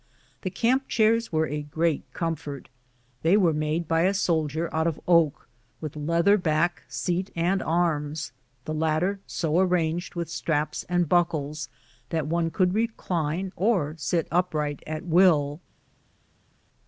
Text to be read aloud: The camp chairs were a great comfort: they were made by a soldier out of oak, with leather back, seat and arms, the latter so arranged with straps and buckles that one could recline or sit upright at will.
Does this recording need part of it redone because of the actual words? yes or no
no